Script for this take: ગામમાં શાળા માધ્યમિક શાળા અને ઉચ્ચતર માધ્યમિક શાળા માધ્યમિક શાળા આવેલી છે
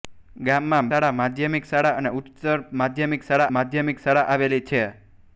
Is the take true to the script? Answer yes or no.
yes